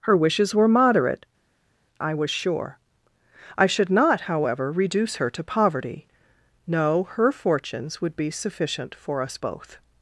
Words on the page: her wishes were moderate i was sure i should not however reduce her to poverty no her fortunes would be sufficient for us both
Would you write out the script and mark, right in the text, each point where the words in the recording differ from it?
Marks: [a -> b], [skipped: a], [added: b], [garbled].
her wishes were moderate i was sure i should not however reduce her to poverty no her fortunes would be sufficient for us both